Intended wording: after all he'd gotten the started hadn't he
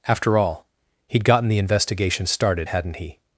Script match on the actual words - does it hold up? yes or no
no